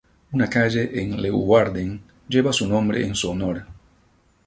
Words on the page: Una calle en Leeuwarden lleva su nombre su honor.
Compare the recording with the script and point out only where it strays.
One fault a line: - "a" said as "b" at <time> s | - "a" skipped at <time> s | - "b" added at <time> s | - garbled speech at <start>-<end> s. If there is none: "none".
- "en" added at 3.0 s